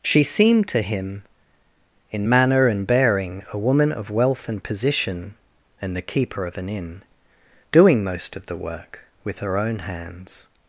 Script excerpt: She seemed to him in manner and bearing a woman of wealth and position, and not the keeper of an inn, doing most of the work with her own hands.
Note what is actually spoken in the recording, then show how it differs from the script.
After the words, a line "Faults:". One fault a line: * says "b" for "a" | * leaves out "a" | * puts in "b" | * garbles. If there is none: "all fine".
She seemed to him in manner and bearing a woman of wealth and position, and the keeper of an inn, doing most of the work with her own hands.
Faults:
* leaves out "not"